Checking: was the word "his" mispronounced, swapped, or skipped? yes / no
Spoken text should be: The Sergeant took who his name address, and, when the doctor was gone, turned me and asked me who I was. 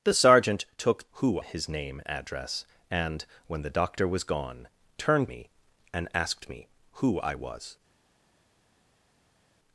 no